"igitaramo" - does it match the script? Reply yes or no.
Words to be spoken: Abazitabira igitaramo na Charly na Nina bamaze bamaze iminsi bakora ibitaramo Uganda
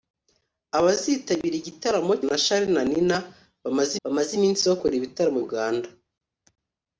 yes